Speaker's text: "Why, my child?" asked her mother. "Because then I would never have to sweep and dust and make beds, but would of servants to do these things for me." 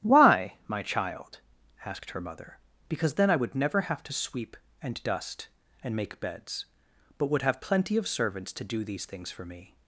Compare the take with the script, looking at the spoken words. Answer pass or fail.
fail